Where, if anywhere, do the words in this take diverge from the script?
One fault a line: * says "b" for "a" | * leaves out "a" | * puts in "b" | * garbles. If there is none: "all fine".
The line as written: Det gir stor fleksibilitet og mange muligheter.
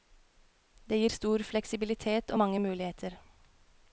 all fine